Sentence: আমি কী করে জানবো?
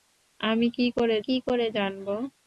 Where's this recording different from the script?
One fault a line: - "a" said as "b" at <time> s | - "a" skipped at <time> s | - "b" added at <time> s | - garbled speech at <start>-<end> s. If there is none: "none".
- "কী করে" added at 1.2 s